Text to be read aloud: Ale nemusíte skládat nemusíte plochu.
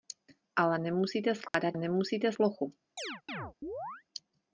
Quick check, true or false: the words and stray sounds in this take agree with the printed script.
false